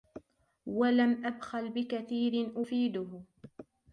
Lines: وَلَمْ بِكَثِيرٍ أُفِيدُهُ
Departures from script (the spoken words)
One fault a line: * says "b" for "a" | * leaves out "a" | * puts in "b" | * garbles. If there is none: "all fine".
* puts in "أَبْخَلْ"